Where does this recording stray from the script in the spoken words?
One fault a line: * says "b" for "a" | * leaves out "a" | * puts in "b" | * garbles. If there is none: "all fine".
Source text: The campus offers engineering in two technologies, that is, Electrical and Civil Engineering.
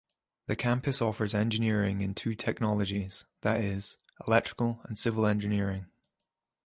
all fine